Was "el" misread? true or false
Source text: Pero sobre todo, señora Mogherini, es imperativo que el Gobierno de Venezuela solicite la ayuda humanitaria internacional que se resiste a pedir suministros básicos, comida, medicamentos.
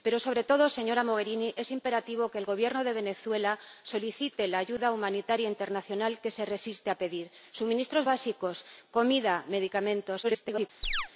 false